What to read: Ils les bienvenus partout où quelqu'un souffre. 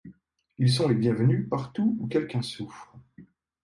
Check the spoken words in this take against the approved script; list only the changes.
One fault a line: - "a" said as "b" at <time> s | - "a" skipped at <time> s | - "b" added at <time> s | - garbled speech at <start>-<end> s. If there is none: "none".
- "sont" added at 0.7 s